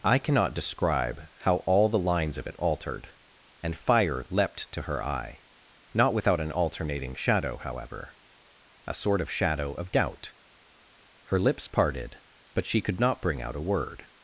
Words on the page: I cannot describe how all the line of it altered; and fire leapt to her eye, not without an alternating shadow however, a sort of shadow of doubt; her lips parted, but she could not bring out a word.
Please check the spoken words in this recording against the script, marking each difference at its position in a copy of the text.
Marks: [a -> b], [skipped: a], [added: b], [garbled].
I cannot describe how all the [line -> lines] of it altered; and fire leapt to her eye, not without an alternating shadow however, a sort of shadow of doubt; her lips parted, but she could not bring out a word.